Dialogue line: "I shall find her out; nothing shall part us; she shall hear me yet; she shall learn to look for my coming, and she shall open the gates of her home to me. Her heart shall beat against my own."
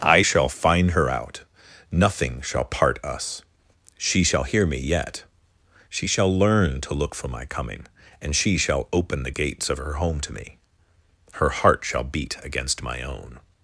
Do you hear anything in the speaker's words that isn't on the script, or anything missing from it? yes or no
no